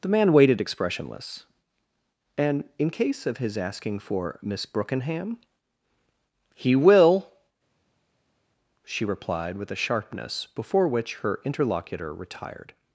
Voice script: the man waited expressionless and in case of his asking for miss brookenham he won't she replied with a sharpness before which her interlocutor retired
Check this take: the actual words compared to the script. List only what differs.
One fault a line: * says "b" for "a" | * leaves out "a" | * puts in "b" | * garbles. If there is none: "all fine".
* says "will" for "won't"